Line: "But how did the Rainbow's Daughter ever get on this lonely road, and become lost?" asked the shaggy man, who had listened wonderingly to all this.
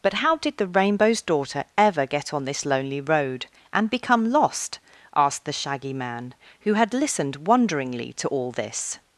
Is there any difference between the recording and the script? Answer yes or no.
no